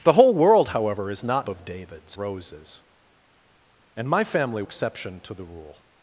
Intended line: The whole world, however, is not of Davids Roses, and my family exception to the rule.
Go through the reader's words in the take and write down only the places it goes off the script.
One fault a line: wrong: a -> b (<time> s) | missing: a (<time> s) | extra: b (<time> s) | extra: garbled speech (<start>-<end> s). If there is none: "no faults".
no faults